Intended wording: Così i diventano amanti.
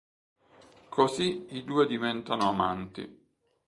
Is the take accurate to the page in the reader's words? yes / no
no